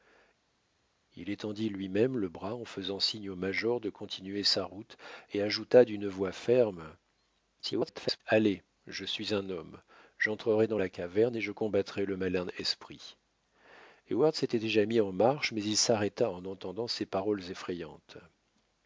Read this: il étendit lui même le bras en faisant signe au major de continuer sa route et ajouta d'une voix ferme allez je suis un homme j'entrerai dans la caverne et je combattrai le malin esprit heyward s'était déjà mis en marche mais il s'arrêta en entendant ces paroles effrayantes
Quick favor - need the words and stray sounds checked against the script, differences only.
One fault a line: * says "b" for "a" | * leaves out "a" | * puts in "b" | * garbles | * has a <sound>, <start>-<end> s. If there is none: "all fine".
* garbles